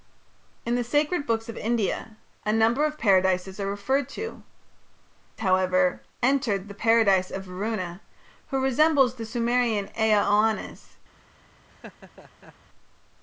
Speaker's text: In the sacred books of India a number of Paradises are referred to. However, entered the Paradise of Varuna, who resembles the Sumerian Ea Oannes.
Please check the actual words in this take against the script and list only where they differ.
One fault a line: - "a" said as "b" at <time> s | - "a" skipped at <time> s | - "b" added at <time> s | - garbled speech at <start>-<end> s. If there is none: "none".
none